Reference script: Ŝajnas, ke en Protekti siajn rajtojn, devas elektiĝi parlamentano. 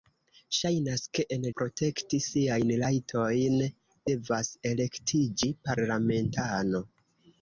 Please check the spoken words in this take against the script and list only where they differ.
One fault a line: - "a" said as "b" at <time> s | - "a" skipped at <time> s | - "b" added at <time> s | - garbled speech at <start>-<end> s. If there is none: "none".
none